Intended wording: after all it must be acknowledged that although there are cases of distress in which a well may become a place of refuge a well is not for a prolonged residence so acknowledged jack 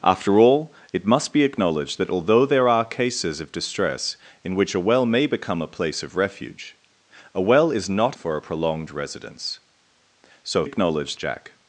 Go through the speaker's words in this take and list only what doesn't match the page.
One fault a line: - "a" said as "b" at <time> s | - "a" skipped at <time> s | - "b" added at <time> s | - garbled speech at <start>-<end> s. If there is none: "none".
none